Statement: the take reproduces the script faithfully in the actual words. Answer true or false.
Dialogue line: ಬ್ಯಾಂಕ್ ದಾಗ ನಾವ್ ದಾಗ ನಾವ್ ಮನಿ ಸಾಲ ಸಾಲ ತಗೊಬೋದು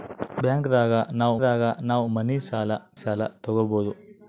true